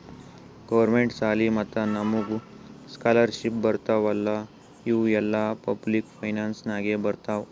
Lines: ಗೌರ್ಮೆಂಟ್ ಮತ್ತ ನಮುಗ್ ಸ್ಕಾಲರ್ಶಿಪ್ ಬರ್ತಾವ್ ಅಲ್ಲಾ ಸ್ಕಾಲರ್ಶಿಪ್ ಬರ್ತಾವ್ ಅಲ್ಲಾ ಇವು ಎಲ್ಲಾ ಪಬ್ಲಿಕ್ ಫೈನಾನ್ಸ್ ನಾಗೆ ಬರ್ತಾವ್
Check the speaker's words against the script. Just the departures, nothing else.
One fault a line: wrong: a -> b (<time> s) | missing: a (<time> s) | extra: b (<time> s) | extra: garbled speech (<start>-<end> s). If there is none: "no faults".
extra: ಸಾಲಿ (1.1 s)
missing: ಸ್ಕಾಲರ್ಶಿಪ್ ಬರ್ತಾವ್ ಅಲ್ಲಾ (4.3 s)